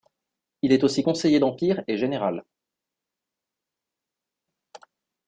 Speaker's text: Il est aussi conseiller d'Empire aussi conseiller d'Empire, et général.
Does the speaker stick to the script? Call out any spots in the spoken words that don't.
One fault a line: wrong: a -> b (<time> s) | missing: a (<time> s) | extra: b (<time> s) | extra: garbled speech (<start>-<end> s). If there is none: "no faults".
missing: aussi conseiller d'Empire (1.8 s)